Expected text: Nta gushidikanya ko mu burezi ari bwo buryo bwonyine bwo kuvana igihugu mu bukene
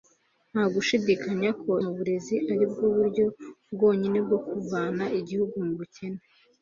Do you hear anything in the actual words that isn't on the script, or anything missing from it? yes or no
no